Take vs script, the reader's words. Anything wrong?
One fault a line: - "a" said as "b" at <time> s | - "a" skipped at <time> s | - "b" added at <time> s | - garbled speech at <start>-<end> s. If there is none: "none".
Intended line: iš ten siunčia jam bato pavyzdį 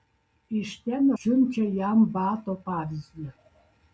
none